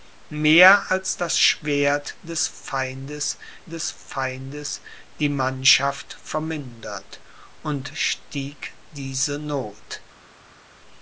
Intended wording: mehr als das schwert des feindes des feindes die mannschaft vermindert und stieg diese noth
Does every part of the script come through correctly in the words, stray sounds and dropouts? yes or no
yes